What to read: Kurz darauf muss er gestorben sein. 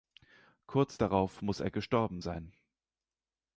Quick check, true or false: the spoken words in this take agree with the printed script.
true